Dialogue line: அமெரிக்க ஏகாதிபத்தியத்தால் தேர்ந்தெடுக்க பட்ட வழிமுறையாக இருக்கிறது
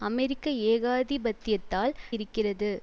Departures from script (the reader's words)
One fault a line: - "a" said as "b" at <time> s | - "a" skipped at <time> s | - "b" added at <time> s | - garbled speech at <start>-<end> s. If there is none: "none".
- "தேர்ந்தெடுக்க பட்ட வழிமுறையாக" skipped at 1.9 s